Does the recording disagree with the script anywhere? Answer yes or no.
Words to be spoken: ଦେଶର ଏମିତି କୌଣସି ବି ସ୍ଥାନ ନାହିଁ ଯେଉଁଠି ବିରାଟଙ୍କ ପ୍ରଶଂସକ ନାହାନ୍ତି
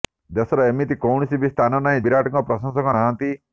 yes